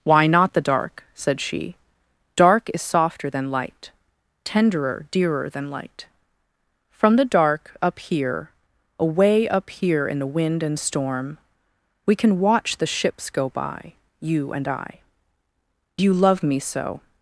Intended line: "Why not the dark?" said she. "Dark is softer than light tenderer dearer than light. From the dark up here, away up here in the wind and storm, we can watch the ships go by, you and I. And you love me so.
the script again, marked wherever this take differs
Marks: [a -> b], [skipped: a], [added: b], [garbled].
"Why not the dark?" said she. "Dark is softer than light tenderer dearer than light. From the dark up here, away up here in the wind and storm, we can watch the ships go by, you and I. [skipped: And] you love me so.